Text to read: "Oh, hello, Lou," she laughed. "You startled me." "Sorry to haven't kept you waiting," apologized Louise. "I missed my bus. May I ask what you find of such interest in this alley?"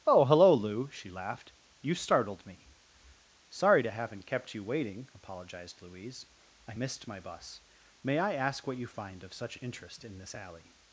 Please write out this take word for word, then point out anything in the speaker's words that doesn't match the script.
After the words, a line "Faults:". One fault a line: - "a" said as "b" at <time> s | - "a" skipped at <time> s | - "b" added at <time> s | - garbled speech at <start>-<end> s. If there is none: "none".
"Oh, hello, Lou," she laughed. "You startled me." "Sorry to haven't kept you waiting," apologized Louise. "I missed my bus. May I ask what you find of such interest in this alley?"
Faults:
none